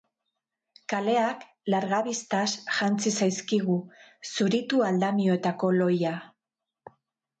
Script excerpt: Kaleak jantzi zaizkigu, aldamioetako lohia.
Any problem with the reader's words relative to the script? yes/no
yes